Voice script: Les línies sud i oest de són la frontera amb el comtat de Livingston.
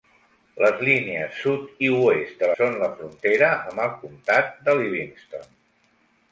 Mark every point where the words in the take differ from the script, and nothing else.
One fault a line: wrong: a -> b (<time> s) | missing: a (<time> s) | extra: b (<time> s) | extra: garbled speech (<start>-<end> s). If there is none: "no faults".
no faults